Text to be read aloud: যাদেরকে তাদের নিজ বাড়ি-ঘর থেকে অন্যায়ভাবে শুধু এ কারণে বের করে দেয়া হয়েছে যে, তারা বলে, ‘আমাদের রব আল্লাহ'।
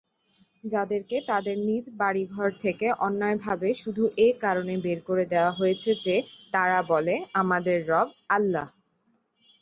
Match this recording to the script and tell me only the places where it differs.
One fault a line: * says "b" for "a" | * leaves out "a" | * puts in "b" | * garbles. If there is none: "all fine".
all fine